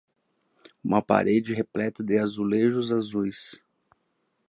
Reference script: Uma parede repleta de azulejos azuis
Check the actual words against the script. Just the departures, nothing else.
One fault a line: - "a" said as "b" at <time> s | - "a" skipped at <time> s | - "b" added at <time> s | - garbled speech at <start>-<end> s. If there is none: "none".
none